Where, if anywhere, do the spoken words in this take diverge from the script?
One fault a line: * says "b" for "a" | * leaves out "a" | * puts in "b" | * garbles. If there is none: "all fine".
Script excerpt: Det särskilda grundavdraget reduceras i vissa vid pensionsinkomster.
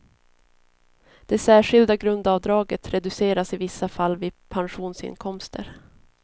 * puts in "fall"